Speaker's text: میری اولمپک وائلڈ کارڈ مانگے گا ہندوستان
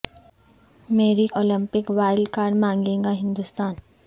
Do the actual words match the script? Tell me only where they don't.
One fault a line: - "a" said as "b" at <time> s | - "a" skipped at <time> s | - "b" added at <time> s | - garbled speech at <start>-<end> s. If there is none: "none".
none